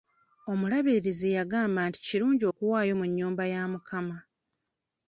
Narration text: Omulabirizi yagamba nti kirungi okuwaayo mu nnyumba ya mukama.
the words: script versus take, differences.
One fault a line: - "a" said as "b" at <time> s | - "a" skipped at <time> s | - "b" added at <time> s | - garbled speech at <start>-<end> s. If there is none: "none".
none